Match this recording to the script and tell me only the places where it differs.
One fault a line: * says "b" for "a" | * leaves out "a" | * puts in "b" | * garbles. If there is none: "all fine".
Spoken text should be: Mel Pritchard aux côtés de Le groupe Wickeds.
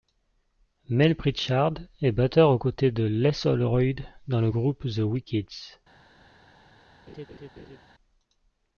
* puts in "est batteur"
* puts in "Les Holroyd dans"
* puts in "The"